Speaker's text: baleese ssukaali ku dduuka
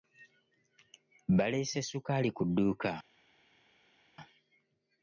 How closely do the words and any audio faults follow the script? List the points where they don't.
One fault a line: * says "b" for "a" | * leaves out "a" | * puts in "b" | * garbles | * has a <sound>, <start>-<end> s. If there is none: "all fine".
all fine